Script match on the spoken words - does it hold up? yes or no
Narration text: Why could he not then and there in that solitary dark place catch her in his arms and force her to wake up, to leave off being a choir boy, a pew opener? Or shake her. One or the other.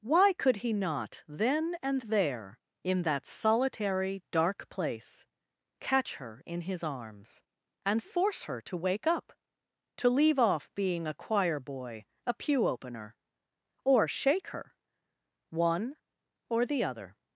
yes